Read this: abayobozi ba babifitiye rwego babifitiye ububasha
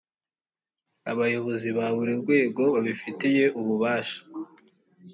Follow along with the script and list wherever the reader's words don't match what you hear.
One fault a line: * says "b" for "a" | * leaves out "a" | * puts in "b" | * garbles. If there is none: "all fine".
* says "buri" for "babifitiye"